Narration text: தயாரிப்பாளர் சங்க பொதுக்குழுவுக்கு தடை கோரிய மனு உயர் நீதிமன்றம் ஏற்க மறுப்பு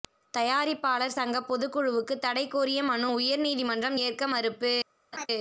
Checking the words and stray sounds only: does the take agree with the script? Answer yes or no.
no